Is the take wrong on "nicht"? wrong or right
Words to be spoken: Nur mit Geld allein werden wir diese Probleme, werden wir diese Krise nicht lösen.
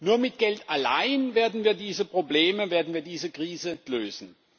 wrong